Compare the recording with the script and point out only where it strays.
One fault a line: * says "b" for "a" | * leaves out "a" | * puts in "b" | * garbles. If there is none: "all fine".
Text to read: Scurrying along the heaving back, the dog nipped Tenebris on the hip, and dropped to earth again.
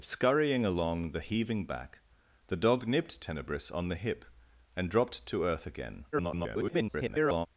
* garbles